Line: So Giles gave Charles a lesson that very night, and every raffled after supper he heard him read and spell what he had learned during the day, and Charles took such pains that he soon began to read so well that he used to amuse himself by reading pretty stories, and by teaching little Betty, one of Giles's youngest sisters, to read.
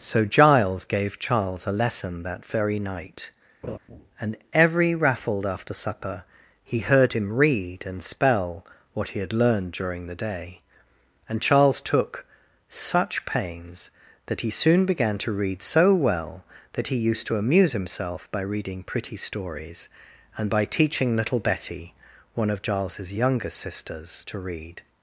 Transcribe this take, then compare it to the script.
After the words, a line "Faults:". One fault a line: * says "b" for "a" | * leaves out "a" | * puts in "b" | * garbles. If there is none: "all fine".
So Giles gave Charles a lesson that very night, and every raffled after supper he heard him read and spell what he had learned during the day, and Charles took such pains that he soon began to read so well that he used to amuse himself by reading pretty stories, and by teaching little Betty, one of Giles's youngest sisters, to read.
Faults:
all fine